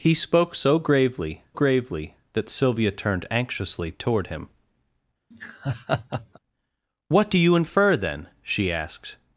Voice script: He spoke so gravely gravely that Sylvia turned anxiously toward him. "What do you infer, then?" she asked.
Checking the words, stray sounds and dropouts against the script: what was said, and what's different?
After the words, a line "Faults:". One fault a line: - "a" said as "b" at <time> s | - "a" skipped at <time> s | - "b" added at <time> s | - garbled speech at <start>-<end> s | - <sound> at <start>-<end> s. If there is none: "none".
He spoke so gravely gravely that Sylvia turned anxiously toward him. "What do you infer, then?" she asked.
Faults:
- laugh at 5.3-6.4 s